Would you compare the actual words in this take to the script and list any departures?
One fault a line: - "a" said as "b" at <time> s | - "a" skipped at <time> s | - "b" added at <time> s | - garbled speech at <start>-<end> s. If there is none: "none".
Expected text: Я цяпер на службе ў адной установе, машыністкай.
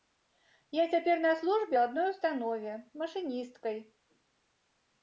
none